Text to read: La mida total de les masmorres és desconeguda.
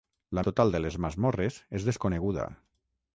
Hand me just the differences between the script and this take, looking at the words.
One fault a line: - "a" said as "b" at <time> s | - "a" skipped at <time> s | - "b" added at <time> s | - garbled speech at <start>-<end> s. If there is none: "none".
- "mida" skipped at 0.4 s